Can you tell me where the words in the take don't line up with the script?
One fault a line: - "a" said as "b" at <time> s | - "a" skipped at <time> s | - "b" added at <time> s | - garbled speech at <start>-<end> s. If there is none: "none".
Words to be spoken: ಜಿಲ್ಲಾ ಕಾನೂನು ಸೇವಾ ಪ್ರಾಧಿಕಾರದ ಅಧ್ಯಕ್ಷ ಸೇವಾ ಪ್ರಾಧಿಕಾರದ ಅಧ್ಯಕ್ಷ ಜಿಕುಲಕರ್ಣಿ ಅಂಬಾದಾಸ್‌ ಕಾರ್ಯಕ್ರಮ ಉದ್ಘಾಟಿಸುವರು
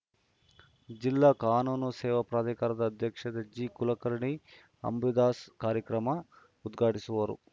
- "ಸೇವಾ ಪ್ರಾಧಿಕಾರದ ಅಧ್ಯಕ್ಷ" skipped at 3.2 s